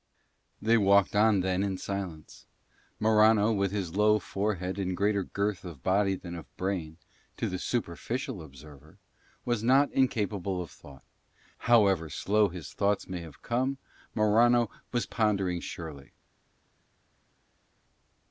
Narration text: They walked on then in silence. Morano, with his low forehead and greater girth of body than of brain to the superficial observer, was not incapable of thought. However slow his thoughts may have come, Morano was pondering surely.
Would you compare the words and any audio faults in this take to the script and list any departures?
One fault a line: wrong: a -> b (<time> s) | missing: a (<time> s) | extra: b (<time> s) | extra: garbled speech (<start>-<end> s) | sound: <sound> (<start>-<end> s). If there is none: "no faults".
no faults